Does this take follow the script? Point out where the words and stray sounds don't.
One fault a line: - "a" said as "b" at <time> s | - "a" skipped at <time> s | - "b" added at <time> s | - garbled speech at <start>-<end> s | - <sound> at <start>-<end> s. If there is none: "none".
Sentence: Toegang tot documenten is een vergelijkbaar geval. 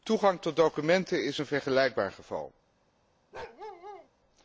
- bark at 3.3-4.1 s